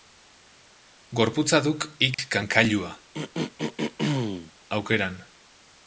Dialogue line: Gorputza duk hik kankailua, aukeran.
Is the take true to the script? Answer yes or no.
yes